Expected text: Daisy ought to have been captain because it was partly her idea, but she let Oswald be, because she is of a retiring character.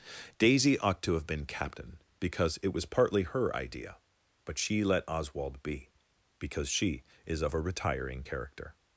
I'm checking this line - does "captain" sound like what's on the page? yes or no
yes